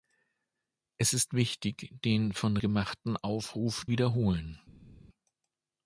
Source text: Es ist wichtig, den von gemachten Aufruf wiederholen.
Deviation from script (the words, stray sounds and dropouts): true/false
false